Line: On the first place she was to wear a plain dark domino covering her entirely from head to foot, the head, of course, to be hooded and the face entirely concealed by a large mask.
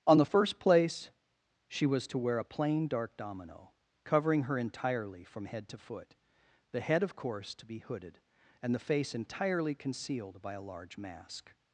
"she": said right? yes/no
yes